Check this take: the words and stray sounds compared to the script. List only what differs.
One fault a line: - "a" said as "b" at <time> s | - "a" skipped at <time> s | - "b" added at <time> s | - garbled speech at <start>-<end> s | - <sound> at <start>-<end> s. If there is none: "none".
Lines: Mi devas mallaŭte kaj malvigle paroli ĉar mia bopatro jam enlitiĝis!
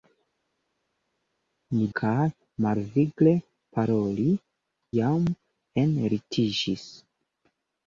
- "devas mallaŭte" skipped at 1.8 s
- "ĉar mia bopatro" skipped at 4.3 s